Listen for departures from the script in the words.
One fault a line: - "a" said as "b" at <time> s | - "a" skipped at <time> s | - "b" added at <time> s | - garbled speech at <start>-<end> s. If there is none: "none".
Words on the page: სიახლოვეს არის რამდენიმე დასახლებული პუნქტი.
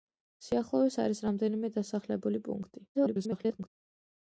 - garbled speech at 2.9-3.7 s